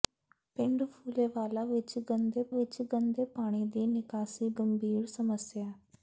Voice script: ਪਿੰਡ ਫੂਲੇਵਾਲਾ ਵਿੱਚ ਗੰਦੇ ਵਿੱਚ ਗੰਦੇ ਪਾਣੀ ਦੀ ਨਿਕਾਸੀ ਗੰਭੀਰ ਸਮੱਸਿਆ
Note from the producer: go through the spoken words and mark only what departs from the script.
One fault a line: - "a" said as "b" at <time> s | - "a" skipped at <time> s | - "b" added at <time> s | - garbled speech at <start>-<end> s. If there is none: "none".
none